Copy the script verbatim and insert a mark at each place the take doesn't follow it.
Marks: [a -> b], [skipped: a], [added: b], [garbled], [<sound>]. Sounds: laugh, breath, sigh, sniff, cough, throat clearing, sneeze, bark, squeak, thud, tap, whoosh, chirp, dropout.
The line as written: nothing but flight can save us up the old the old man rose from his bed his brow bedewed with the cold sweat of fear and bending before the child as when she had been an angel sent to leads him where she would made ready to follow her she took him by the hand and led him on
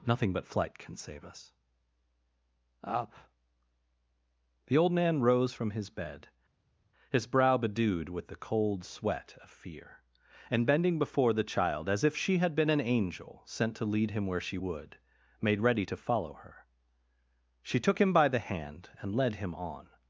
nothing but flight can save us up the old [skipped: the old] man rose from his bed his brow bedewed with the cold sweat of fear and bending before the child as [when -> if] she had been an angel sent to [leads -> lead] him where she would made ready to follow her she took him by the hand and led him on